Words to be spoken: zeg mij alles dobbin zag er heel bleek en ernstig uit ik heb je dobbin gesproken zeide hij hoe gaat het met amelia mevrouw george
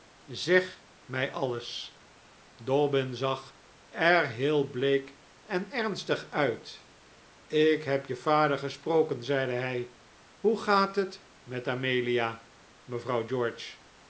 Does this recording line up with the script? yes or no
no